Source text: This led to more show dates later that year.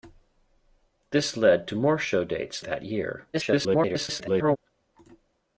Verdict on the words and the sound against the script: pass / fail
fail